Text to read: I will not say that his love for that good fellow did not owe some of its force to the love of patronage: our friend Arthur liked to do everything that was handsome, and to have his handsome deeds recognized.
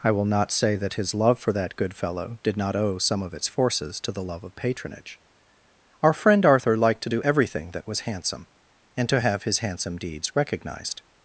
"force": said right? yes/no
no